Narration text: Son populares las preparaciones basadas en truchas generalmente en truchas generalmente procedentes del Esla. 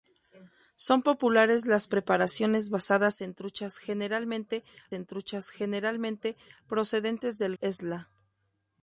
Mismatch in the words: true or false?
false